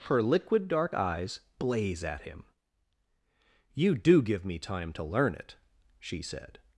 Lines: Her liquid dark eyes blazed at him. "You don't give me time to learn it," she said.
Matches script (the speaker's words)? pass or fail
fail